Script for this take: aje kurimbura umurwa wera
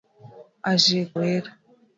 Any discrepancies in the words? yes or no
yes